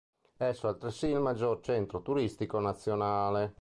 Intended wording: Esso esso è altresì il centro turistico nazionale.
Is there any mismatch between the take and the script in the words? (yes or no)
yes